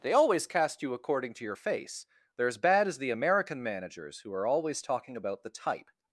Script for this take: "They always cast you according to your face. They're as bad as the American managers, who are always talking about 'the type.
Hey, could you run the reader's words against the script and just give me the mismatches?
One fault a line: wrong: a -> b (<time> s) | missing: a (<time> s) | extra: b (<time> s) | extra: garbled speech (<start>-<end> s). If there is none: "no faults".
no faults